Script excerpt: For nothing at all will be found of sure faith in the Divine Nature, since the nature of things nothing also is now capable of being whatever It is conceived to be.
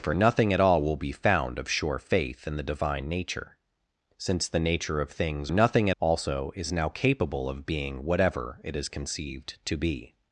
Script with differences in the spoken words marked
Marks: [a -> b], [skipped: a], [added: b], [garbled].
For nothing at all will be found of sure faith in the Divine Nature, since the nature of things nothing also is now capable of being whatever It is conceived to be.